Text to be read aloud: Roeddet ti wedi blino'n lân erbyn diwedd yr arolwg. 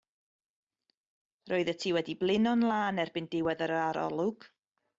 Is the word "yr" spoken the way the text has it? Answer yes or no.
yes